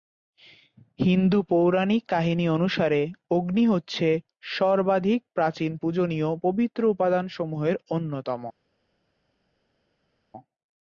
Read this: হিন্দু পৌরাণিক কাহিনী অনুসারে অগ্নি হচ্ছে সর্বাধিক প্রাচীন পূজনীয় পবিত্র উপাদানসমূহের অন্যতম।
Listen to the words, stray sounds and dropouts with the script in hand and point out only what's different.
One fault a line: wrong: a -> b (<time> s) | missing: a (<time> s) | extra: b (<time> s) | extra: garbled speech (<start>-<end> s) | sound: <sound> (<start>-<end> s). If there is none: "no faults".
no faults